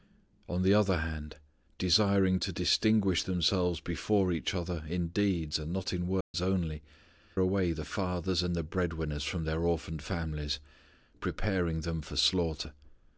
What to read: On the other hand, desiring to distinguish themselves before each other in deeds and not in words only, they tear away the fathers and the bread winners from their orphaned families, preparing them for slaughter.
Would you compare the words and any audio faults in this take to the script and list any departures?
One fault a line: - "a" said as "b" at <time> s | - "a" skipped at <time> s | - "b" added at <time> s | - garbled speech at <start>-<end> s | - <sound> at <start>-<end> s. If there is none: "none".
- dropout at 6.2-6.3 s
- "they tear" skipped at 6.8 s